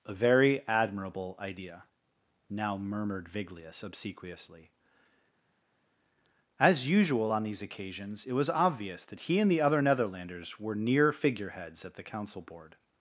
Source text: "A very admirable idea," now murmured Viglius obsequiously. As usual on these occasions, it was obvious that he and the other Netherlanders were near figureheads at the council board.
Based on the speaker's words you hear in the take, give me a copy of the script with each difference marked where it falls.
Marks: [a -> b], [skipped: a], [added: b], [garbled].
"A very admirable idea," now murmured Viglius obsequiously. As usual on these occasions, it was obvious that he and the other Netherlanders were near figureheads at the council board.